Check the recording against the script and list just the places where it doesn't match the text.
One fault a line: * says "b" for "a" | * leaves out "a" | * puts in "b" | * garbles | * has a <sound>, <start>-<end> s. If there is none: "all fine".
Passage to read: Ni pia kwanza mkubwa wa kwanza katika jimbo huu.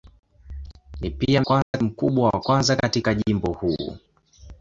* has a dropout, 1.6-1.7 s